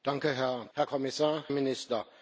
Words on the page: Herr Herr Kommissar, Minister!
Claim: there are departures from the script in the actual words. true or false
false